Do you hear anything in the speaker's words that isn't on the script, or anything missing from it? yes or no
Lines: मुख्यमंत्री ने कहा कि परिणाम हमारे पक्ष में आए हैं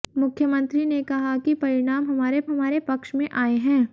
yes